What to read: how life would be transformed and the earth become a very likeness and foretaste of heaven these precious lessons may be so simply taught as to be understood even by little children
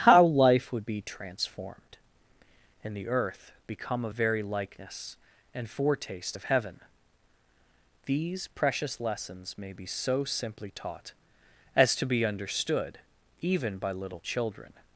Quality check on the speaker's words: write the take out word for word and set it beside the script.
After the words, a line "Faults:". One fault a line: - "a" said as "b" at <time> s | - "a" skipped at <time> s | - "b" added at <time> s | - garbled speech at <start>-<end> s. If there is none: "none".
how life would be transformed and the earth become a very likeness and foretaste of heaven these precious lessons may be so simply taught as to be understood even by little children
Faults:
none